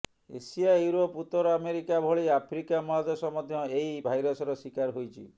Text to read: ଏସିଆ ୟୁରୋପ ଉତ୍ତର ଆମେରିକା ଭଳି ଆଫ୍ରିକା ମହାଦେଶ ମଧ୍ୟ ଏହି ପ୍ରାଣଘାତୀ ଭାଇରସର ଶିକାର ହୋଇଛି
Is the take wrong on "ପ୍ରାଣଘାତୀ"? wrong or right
wrong